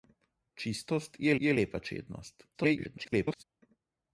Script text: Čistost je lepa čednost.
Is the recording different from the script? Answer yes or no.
yes